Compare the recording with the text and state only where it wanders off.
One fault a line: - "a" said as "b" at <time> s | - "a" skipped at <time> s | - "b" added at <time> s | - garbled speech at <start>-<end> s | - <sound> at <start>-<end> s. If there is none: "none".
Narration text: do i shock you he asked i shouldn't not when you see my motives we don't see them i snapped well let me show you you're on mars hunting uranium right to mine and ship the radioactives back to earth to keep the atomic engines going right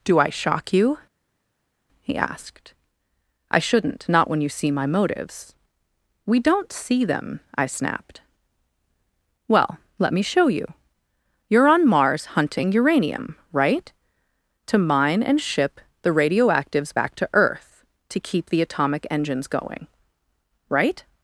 none